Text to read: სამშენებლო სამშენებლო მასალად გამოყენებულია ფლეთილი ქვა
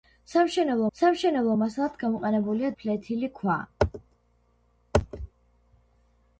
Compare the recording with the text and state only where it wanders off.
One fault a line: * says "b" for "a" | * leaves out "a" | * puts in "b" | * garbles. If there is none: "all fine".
all fine